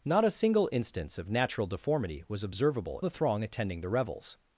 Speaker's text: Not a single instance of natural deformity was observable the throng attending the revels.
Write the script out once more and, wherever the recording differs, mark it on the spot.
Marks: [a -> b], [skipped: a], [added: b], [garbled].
Not a single instance of natural deformity was observable the throng attending the revels.